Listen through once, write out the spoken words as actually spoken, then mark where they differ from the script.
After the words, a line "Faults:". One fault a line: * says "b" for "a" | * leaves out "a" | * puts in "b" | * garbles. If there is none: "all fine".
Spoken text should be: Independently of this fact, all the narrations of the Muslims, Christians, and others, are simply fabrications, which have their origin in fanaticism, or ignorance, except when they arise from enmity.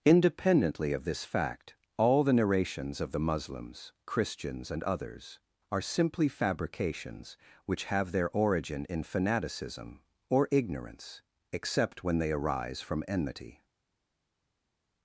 Independently of this fact, all the narrations of the Muslims, Christians, and others, are simply fabrications, which have their origin in fanaticism, or ignorance, except when they arise from enmity.
Faults:
all fine